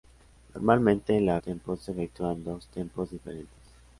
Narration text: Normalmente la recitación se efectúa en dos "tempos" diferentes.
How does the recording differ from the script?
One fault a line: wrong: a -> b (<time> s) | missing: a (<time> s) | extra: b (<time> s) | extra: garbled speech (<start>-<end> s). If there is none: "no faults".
wrong: recitación -> tempos (1.4 s)